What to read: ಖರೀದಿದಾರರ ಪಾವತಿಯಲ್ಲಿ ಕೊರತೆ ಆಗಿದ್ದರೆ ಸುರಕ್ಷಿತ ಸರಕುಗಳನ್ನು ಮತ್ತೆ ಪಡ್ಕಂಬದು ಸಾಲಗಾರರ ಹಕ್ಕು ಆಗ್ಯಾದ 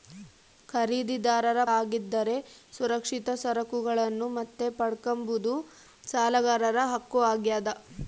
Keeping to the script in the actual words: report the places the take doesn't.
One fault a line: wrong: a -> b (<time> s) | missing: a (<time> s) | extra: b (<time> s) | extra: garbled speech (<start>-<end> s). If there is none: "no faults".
missing: ಪಾವತಿಯಲ್ಲಿ ಕೊರತೆ (1.6 s)